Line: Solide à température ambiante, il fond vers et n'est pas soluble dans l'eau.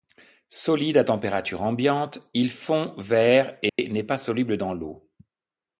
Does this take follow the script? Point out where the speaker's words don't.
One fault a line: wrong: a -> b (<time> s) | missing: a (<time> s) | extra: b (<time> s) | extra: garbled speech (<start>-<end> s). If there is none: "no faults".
no faults